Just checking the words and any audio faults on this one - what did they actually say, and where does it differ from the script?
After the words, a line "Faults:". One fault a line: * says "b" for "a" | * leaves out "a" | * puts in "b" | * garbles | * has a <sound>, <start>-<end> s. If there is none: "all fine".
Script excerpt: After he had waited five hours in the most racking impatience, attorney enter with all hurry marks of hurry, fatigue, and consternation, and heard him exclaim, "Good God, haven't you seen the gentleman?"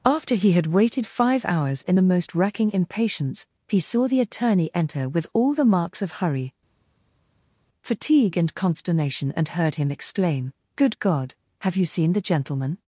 After he had waited five hours in the most racking impatience, he saw the attorney enter with all the marks of hurry, fatigue, and consternation, and heard him exclaim, "Good God, have you seen the gentleman?"
Faults:
* puts in "he saw the"
* says "the" for "hurry"
* says "have" for "haven't"